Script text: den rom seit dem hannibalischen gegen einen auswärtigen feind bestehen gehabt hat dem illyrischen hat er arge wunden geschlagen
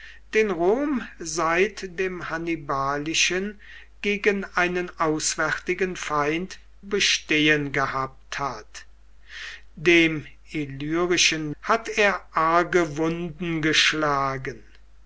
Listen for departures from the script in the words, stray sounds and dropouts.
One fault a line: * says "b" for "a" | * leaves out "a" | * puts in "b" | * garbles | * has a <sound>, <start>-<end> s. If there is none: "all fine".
all fine